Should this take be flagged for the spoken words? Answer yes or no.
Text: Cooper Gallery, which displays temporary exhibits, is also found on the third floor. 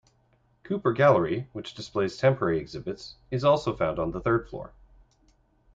no